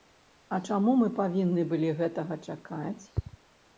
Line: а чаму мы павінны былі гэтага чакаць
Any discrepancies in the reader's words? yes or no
no